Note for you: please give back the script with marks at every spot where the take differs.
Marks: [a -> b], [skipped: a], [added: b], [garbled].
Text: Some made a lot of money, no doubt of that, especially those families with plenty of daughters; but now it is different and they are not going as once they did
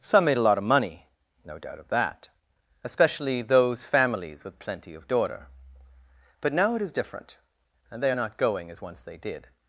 Some made a lot of money, no doubt of that, especially those families with plenty of [daughters; -> daughter] but now it is different and they are not going as once they did